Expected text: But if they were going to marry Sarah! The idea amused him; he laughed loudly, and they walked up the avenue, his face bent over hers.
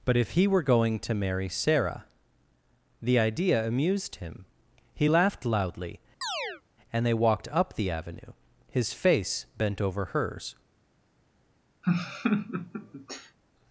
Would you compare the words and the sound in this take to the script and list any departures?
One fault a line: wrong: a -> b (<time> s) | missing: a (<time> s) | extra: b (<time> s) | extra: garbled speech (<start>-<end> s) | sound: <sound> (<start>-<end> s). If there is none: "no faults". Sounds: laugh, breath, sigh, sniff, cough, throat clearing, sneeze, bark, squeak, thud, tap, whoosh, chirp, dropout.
wrong: they -> he (0.3 s)
sound: chirp (6.2-6.6 s)
sound: laugh (11.8-13.4 s)